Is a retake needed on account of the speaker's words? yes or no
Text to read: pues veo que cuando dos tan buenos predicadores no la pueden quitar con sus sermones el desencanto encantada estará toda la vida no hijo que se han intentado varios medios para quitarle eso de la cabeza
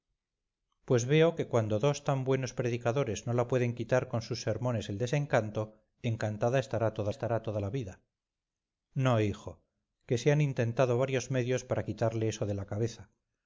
yes